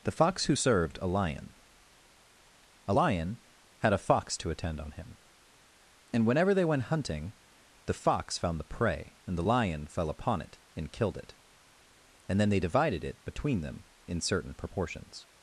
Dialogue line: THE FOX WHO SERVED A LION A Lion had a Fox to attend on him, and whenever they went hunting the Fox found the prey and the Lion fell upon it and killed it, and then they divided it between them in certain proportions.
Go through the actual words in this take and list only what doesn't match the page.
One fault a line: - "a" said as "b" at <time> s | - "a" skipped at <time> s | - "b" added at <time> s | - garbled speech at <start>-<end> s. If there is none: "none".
none